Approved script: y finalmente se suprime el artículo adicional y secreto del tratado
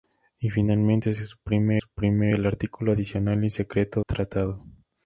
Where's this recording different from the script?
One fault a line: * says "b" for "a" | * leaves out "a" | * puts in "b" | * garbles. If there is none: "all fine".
* puts in "suprime"
* leaves out "del"